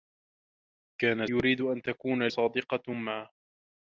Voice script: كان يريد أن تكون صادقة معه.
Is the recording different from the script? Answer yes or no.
no